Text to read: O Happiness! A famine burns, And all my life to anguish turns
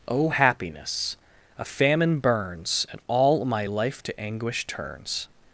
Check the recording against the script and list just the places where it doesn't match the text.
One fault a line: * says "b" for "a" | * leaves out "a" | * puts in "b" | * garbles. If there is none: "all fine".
all fine